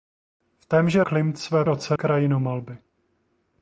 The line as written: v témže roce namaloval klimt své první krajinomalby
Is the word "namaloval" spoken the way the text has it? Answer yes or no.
no